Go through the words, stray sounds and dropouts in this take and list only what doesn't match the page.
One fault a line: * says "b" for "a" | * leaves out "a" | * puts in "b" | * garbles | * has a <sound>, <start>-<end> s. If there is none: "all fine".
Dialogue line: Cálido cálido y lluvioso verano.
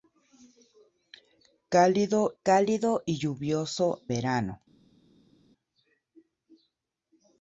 all fine